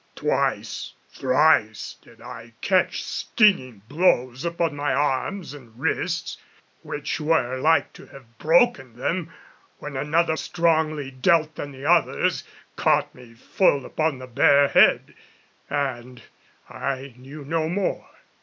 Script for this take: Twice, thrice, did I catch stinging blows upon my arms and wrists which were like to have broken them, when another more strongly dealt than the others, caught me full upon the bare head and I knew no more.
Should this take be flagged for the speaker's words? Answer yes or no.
yes